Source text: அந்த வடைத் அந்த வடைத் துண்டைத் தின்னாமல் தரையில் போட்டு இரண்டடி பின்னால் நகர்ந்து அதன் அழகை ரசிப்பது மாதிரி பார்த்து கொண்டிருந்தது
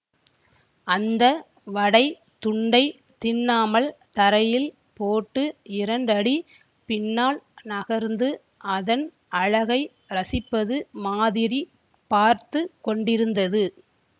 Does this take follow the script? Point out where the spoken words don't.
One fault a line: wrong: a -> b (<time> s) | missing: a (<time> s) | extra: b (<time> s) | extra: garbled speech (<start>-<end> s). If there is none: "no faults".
missing: அந்த வடைத் (2.1 s)